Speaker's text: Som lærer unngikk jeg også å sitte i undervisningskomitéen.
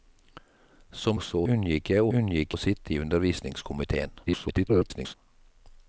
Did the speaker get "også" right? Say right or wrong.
wrong